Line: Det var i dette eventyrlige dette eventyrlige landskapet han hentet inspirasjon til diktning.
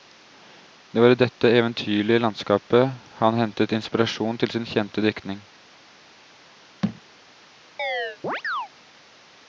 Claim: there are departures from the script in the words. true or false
true